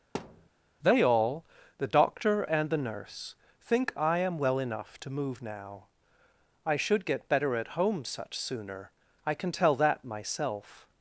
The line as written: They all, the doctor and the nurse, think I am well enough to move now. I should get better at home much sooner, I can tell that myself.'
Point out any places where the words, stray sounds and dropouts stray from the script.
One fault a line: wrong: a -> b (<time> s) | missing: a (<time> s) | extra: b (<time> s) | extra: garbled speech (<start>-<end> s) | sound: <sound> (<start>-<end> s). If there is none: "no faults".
sound: thud (0.1-0.5 s)
wrong: much -> such (8.0 s)